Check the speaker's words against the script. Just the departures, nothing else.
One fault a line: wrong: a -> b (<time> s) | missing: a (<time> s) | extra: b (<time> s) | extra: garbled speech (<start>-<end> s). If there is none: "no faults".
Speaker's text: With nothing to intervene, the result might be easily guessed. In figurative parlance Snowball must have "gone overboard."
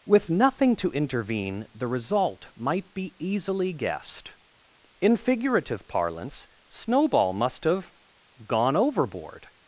no faults